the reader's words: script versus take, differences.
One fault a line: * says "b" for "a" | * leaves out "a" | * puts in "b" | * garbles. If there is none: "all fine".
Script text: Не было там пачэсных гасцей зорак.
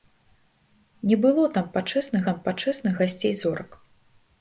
* puts in "там пачэсных"